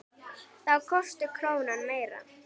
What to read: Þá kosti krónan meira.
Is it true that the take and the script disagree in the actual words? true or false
false